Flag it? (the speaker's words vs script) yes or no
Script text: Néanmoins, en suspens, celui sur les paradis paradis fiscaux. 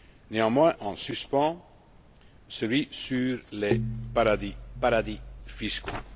no